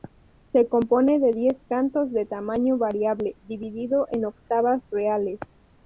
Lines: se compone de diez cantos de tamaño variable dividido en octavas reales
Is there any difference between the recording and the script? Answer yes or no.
no